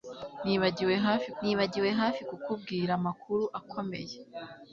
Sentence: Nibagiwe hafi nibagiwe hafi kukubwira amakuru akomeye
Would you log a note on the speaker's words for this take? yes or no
no